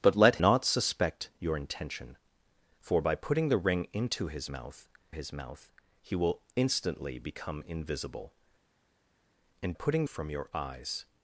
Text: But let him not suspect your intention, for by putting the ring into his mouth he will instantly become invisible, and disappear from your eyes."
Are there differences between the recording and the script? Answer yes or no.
yes